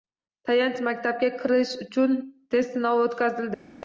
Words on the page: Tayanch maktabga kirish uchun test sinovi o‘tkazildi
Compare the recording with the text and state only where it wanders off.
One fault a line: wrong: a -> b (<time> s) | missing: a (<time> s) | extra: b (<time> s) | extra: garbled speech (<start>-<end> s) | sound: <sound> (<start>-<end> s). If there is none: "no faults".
no faults